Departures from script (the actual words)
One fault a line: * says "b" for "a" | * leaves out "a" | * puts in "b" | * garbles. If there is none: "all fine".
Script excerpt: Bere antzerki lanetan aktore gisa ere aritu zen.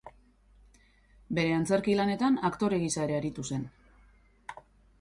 all fine